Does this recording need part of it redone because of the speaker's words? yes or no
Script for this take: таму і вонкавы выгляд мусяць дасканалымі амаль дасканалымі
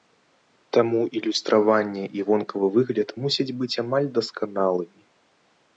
yes